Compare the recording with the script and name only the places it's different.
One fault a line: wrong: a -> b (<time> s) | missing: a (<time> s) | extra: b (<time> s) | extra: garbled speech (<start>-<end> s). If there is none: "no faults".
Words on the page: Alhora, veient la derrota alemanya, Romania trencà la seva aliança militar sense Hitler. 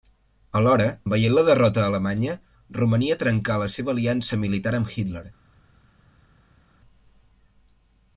wrong: sense -> amb (4.8 s)